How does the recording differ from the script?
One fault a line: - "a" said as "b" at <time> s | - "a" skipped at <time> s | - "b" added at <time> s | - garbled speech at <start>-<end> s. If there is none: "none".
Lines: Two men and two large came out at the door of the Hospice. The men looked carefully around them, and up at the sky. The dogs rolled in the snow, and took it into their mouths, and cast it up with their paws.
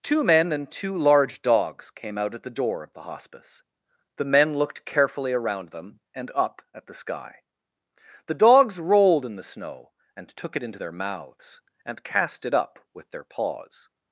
- "dogs" added at 1.4 s